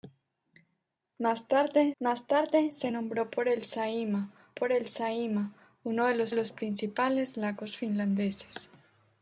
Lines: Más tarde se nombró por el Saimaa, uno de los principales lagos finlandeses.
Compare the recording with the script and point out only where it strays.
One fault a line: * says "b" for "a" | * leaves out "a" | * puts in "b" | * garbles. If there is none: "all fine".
* puts in "más tarde"
* puts in "por el Saimaa"
* puts in "los"